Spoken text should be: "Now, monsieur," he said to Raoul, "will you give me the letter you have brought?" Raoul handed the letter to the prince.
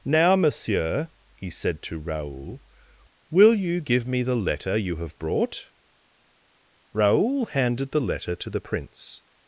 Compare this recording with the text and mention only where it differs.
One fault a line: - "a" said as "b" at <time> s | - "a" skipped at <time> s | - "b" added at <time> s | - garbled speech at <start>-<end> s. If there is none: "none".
none